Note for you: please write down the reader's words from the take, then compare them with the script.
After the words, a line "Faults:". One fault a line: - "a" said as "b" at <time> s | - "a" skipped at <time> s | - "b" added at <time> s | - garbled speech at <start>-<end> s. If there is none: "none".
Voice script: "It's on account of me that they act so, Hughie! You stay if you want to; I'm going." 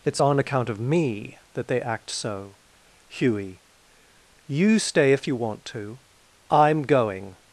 "It's on account of me that they act so, Hughie! You stay if you want to; I'm going."
Faults:
none